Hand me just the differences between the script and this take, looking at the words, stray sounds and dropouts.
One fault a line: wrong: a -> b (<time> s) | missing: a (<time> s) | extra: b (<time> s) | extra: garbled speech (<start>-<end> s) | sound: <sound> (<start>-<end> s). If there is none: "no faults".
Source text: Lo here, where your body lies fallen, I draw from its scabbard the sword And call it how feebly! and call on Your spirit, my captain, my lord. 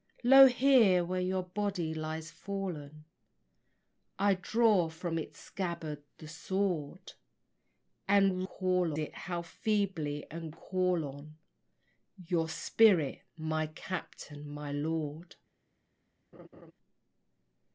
sound: laugh (16.3-16.7 s)